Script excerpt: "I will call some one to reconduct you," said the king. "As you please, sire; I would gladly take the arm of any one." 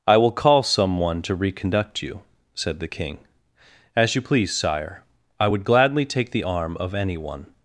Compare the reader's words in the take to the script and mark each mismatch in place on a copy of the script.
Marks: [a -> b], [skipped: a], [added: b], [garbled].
"I will call some one to reconduct you," said the king. "As you please, sire; I would gladly take the arm of any one."